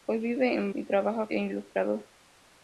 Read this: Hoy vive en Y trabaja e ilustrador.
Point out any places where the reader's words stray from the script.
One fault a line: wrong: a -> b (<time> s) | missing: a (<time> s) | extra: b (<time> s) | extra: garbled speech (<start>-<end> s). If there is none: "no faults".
no faults